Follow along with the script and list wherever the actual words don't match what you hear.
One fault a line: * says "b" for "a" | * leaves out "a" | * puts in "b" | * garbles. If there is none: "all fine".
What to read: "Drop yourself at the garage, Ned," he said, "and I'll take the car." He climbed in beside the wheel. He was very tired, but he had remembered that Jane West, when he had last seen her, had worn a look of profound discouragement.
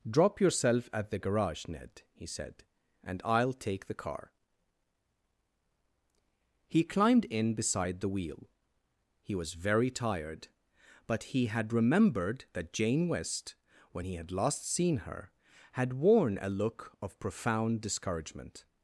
all fine